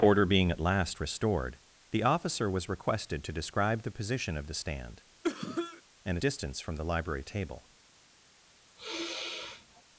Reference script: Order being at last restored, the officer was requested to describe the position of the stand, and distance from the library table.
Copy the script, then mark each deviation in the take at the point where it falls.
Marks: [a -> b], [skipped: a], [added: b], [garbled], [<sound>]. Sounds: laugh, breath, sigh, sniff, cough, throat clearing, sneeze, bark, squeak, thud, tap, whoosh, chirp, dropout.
Order being at last restored, the officer was requested to describe the position of the stand, [cough] and distance from the library table. [sigh]